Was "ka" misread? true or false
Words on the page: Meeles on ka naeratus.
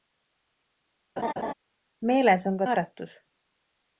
false